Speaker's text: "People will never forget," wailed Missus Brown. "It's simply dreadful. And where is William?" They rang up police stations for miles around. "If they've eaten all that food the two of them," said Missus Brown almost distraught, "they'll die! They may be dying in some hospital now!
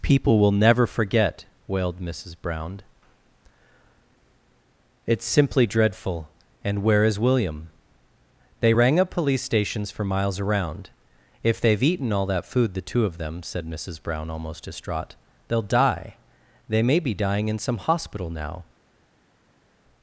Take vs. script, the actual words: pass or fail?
pass